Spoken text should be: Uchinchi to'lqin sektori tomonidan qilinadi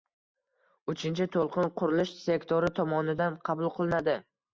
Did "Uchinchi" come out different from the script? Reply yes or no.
no